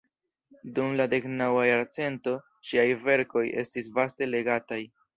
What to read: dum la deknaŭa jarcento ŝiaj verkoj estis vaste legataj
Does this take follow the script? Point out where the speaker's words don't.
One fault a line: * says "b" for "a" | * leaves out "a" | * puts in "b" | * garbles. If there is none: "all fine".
all fine